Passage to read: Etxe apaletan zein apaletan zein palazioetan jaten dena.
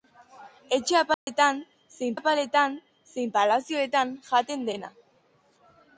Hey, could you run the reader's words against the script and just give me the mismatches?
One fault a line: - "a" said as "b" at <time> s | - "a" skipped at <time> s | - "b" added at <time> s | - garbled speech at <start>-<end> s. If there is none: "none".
none